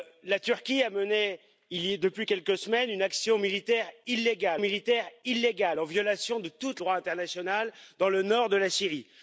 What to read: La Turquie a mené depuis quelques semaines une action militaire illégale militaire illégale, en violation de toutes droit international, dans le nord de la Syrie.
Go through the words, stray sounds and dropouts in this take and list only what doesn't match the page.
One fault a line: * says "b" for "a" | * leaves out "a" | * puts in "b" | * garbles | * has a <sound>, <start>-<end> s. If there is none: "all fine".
all fine